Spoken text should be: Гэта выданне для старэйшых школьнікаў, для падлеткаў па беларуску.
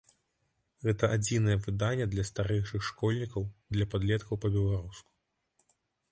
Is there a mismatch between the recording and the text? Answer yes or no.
yes